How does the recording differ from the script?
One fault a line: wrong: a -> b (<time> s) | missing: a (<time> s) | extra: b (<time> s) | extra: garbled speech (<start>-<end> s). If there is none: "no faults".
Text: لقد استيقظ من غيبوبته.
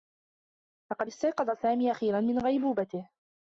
extra: سامي أخيرا (1.5 s)